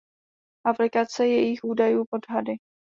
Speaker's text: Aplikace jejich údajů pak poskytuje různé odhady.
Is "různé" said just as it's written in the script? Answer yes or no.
no